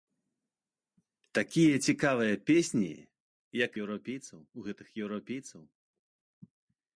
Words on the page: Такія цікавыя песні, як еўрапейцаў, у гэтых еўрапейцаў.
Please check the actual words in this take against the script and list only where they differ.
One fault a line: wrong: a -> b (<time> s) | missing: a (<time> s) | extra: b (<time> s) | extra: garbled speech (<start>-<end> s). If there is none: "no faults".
no faults